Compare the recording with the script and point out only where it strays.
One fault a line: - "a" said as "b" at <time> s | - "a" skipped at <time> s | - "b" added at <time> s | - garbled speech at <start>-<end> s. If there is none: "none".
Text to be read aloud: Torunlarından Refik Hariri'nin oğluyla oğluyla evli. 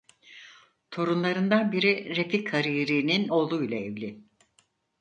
- "biri" added at 1.7 s
- "oğluyla" skipped at 3.8 s